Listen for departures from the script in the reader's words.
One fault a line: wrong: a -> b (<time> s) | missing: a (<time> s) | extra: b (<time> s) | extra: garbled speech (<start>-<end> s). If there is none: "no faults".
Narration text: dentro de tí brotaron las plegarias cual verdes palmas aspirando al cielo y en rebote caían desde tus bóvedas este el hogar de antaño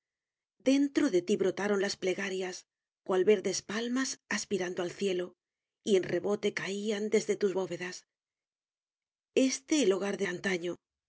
no faults